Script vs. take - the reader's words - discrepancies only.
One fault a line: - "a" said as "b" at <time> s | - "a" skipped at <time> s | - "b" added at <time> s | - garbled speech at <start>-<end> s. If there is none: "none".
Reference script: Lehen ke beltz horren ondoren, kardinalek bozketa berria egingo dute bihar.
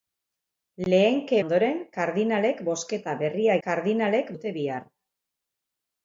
- "beltz horren" skipped at 1.4 s
- "egingo" said as "kardinalek" at 3.6 s